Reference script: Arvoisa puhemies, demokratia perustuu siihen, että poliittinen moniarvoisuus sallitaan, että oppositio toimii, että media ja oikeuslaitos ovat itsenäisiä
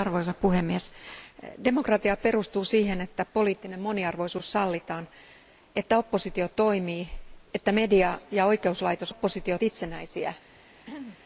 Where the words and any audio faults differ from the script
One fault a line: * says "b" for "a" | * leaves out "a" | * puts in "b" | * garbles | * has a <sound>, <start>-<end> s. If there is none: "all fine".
* says "oppositio" for "ovat"
* has a throat clearing, 10.8-11.2 s